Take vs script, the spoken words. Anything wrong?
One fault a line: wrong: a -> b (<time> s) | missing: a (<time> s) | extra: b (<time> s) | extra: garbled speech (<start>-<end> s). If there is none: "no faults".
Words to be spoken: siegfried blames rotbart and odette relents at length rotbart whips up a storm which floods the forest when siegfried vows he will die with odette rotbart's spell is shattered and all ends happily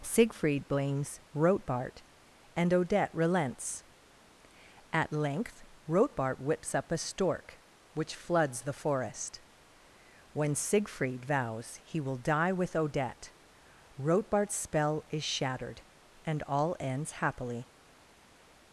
wrong: storm -> stork (7.0 s)